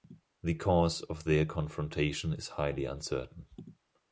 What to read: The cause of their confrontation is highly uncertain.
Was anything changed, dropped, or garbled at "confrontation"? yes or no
no